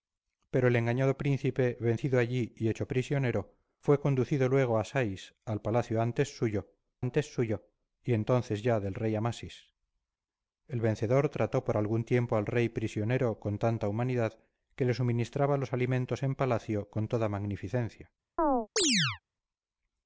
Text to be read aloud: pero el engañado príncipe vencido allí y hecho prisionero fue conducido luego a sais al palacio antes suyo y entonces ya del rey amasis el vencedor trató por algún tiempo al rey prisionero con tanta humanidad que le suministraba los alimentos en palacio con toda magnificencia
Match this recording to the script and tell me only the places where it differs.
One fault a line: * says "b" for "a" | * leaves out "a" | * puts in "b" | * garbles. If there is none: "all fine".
* puts in "antes suyo"